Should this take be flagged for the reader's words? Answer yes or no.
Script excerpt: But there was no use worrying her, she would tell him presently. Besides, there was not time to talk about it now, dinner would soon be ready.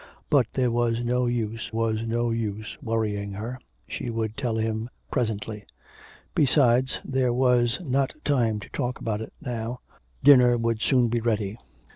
yes